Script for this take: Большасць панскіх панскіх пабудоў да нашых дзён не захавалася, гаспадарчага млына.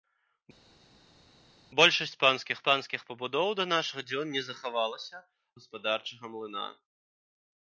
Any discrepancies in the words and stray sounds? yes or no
no